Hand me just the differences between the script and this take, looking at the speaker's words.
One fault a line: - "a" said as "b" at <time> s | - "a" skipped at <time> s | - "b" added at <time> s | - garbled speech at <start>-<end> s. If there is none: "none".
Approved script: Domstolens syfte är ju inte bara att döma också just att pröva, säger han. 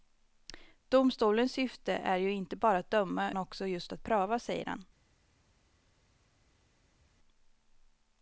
none